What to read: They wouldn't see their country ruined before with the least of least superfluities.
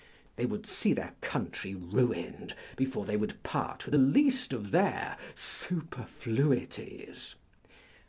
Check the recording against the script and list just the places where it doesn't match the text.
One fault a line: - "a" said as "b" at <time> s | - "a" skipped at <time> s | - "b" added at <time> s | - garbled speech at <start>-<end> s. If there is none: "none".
- "wouldn't" said as "would" at 0.5 s
- "they would part" added at 3.0 s
- "least" said as "their" at 4.7 s